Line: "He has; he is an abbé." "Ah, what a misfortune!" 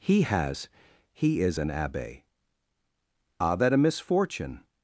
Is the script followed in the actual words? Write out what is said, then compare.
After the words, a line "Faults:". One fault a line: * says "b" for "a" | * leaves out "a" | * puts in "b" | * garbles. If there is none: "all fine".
"He has; he is an abbé." "Ah, that a misfortune!"
Faults:
* says "that" for "what"